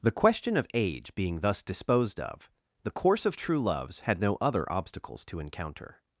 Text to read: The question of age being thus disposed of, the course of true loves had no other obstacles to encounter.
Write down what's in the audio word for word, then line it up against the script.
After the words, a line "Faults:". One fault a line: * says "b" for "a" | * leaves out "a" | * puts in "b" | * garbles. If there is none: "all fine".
The question of age being thus disposed of, the course of true loves had no other obstacles to encounter.
Faults:
all fine